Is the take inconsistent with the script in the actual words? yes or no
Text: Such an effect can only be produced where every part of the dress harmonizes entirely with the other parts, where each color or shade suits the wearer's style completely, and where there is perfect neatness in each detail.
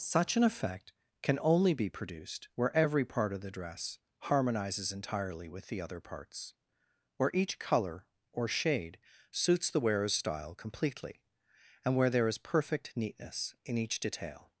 no